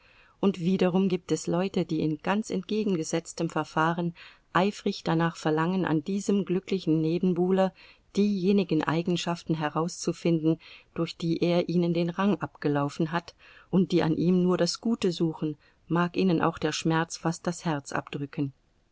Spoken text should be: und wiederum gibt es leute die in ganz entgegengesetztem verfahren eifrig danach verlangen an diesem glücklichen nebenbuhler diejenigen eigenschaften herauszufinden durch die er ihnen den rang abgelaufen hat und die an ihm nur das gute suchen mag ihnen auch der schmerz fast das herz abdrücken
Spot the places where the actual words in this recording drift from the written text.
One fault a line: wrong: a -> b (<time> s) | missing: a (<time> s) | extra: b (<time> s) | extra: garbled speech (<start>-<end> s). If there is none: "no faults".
no faults